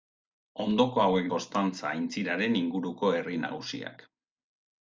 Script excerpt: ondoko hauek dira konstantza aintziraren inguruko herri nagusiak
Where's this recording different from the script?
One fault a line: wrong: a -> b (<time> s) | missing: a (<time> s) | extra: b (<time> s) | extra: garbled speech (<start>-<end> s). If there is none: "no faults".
missing: dira (1.3 s)